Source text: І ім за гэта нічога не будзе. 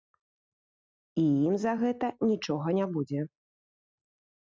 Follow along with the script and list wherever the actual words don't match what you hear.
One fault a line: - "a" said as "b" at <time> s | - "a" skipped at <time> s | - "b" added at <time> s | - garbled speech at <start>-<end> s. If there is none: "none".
none